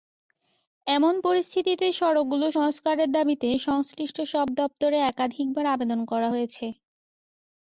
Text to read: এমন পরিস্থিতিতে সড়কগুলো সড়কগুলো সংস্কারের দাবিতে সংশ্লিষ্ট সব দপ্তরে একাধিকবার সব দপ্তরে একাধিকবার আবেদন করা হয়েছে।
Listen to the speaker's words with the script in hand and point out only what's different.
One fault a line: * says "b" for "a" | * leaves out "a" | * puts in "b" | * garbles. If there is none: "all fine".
* leaves out "সড়কগুলো"
* leaves out "সব দপ্তরে একাধিকবার"